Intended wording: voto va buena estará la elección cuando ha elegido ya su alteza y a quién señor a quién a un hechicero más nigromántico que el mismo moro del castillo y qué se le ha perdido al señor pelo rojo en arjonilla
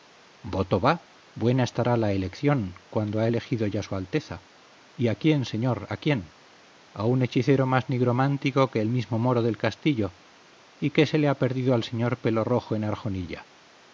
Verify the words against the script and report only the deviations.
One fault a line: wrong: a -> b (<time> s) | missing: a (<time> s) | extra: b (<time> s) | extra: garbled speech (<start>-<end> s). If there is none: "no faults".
no faults